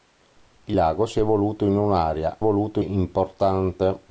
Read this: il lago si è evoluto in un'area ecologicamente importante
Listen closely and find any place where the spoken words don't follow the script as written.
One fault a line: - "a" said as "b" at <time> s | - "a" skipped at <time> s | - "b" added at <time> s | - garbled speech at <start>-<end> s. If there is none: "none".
- "ecologicamente" said as "evoluto" at 2.4 s